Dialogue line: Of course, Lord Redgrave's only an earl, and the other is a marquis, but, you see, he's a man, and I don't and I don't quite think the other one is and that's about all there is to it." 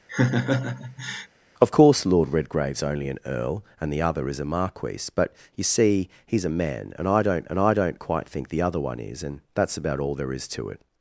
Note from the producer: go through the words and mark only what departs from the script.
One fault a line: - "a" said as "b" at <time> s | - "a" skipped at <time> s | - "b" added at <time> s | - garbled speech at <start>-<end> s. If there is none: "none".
none